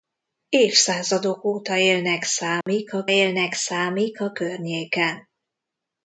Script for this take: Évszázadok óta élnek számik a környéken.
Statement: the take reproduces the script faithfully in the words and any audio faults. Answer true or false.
false